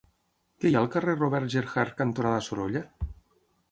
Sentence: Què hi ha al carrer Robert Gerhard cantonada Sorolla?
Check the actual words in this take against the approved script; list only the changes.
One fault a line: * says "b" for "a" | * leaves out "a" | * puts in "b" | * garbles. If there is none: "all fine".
all fine